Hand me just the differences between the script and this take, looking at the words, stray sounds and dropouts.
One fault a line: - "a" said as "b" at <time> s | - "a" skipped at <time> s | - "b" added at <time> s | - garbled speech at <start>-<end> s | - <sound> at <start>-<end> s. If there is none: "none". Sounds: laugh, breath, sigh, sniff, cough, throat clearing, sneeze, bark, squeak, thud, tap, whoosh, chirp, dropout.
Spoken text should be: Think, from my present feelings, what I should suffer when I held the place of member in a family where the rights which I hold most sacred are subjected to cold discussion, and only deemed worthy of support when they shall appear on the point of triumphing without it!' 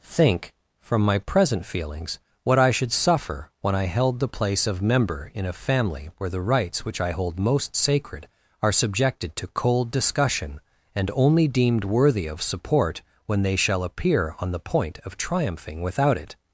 none